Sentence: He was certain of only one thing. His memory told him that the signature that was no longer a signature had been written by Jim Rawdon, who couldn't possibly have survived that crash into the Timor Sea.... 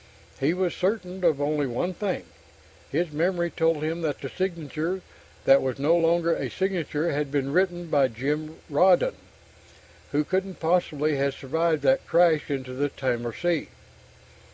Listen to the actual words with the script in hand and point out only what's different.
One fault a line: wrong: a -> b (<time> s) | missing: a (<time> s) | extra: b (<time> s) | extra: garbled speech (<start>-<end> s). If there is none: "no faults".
no faults